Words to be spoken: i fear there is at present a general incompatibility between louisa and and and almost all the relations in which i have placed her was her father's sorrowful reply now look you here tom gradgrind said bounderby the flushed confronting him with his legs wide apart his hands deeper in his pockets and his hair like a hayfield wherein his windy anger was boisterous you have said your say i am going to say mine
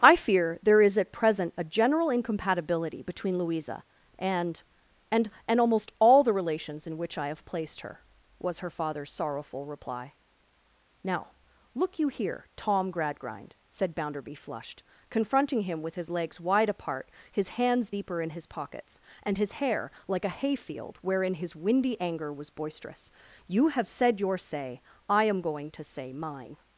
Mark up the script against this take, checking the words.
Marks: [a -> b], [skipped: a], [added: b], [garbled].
i fear there is at present a general incompatibility between louisa and and and almost all the relations in which i have placed her was her father's sorrowful reply now look you here tom gradgrind said bounderby [skipped: the] flushed confronting him with his legs wide apart his hands deeper in his pockets and his hair like a hayfield wherein his windy anger was boisterous you have said your say i am going to say mine